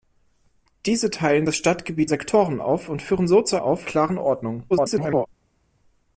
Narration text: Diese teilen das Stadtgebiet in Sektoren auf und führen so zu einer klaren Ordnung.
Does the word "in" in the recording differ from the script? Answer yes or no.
yes